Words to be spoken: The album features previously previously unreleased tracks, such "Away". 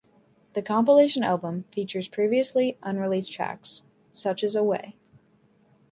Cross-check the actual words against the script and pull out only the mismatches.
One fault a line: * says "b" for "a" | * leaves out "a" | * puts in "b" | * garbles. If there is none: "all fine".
* puts in "compilation"
* leaves out "previously"
* puts in "as"